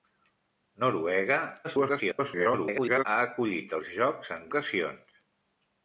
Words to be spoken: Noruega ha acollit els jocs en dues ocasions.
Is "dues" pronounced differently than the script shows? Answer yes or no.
yes